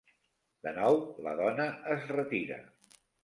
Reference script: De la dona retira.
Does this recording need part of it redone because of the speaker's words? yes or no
yes